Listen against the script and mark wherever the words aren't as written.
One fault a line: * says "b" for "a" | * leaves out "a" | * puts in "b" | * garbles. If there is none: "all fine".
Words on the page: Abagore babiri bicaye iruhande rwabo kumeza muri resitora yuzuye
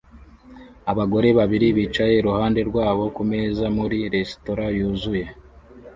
all fine